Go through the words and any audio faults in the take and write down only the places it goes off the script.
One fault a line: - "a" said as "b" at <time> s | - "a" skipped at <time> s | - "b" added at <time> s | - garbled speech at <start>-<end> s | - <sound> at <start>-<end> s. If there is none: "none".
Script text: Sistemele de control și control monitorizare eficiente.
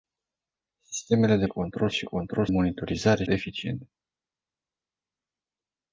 none